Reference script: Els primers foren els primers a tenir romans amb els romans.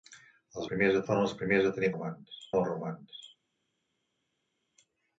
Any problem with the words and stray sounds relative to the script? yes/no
no